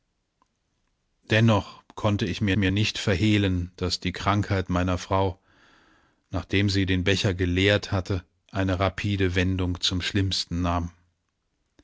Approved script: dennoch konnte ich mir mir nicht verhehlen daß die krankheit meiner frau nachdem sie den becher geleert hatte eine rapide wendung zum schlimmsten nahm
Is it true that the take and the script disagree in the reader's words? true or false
false